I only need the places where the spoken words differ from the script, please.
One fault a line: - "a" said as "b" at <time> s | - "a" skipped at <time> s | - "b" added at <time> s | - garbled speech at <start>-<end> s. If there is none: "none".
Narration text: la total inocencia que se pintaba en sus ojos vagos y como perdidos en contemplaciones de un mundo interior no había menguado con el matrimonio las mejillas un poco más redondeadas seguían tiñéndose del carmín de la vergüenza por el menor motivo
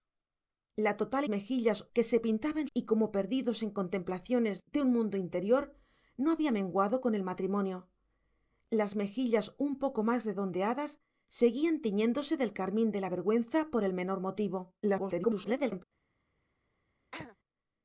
- "inocencia" said as "mejillas" at 1.3 s
- "sus ojos vagos" skipped at 2.7 s
- garbled speech at 14.8-15.8 s